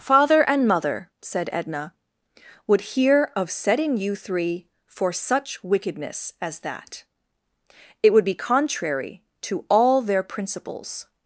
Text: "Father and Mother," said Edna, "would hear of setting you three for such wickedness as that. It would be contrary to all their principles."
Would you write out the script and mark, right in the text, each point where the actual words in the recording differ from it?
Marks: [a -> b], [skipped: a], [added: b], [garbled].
"Father and Mother," said Edna, "would hear of setting you three for such wickedness as that. It would be contrary to all their principles."